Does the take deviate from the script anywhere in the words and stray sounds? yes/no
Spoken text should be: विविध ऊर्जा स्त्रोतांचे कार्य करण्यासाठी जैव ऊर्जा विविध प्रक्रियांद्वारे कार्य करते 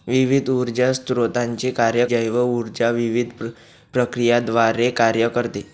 yes